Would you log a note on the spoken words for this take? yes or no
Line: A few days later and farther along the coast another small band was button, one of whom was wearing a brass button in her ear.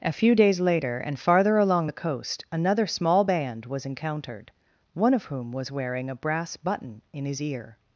yes